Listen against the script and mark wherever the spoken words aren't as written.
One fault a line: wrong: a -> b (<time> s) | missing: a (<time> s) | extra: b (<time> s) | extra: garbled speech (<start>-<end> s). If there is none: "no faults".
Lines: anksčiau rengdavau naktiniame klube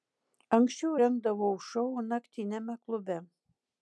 extra: šou (1.7 s)